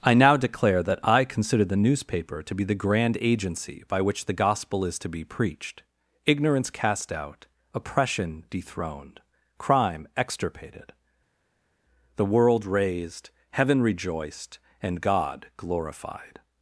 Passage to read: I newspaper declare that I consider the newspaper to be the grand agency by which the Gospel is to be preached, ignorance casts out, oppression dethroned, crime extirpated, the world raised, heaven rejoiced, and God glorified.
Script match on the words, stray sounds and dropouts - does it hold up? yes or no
no